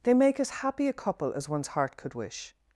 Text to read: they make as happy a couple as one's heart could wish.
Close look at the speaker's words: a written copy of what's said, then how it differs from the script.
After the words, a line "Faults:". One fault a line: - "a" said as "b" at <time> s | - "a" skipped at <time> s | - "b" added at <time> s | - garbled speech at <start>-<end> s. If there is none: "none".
they make as happy a couple as one's heart could wish.
Faults:
none